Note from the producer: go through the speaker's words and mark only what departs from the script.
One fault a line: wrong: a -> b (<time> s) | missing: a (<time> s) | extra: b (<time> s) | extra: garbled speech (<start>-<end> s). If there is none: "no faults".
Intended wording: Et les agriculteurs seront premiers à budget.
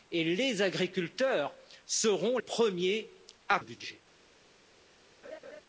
no faults